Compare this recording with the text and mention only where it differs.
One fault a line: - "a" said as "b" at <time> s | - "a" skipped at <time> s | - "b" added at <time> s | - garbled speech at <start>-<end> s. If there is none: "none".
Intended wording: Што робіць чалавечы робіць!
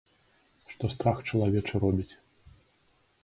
- "робіць" said as "страх" at 0.9 s